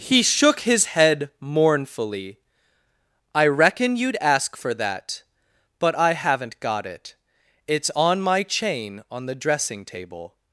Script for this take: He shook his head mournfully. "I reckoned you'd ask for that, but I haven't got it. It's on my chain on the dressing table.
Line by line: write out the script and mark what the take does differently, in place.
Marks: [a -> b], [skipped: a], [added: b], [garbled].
He shook his head mournfully. "I [reckoned -> reckon] you'd ask for that, but I haven't got it. It's on my chain on the dressing table.